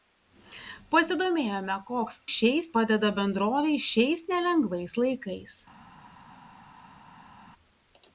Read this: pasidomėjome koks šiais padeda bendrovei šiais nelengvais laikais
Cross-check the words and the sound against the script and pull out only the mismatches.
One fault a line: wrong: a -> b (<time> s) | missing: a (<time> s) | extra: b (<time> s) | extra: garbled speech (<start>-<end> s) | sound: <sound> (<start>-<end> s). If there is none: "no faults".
no faults